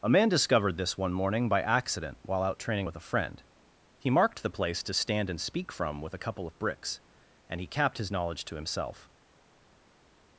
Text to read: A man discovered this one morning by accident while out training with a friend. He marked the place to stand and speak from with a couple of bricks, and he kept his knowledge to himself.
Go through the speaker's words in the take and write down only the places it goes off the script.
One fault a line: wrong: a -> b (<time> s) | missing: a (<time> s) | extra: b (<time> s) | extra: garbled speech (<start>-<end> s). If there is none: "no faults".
wrong: kept -> capped (7.7 s)